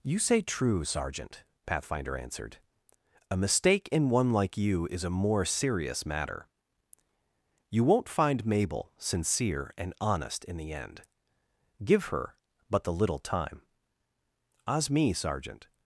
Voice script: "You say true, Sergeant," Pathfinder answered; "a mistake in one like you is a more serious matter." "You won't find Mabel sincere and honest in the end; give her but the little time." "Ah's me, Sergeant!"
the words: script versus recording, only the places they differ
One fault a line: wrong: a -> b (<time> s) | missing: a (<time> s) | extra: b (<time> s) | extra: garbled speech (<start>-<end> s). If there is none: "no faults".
no faults